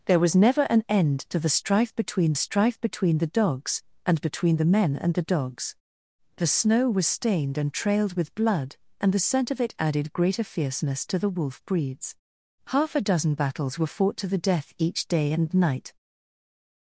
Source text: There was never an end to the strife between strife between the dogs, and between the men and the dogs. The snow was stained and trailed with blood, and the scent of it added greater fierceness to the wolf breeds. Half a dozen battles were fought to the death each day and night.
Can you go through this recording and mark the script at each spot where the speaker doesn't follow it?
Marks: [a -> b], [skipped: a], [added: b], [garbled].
There was never an end to the strife between strife between the dogs, and between the men and the dogs. The snow was stained and trailed with blood, and the scent of it added greater fierceness to the wolf breeds. Half a dozen battles were fought to the death each day and night.